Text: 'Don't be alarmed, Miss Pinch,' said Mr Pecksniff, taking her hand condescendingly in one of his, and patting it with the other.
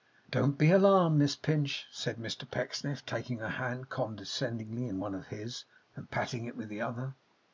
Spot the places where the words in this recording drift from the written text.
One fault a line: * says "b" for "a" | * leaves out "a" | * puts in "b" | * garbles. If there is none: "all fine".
all fine